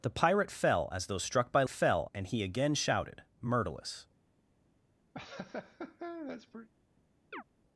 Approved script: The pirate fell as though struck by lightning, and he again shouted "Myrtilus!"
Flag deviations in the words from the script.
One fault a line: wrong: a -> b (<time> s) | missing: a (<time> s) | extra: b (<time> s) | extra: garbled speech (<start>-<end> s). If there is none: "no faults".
wrong: lightning -> fell (1.7 s)